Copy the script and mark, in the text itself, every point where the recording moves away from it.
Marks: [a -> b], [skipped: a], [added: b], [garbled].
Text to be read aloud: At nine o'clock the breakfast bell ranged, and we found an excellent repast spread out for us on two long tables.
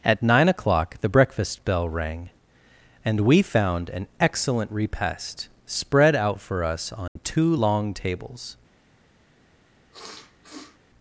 At nine o'clock the breakfast bell [ranged, -> rang] and we found an excellent repast spread out for us on two long tables.